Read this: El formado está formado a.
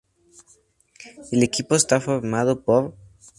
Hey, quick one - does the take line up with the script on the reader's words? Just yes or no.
no